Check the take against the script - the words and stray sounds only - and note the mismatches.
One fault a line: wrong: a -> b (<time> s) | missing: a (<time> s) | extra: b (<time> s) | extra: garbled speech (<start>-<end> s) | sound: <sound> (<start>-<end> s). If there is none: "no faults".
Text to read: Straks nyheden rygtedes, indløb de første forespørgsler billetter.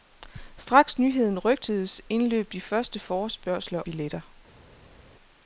no faults